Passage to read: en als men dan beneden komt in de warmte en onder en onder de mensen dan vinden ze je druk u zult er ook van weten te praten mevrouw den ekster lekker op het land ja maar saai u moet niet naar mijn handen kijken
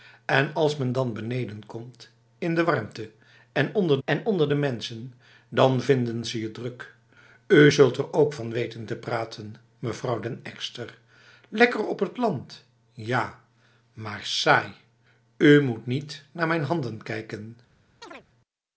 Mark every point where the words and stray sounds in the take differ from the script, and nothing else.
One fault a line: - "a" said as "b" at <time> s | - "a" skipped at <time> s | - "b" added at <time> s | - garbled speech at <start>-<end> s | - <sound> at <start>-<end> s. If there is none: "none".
- chirp at 18.0-18.2 s